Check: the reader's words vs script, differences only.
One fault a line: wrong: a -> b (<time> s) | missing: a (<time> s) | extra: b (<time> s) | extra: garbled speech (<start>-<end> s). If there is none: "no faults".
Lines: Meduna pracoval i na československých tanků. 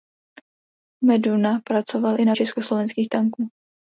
no faults